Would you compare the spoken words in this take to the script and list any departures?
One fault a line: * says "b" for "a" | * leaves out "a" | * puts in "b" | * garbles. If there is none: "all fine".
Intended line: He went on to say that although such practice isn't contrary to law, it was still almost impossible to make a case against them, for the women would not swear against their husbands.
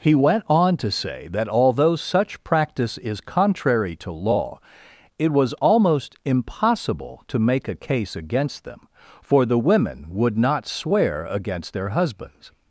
* says "is" for "isn't"
* leaves out "still"